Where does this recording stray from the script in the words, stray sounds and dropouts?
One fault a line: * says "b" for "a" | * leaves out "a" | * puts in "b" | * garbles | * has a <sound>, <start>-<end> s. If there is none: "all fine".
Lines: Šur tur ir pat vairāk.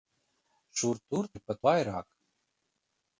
all fine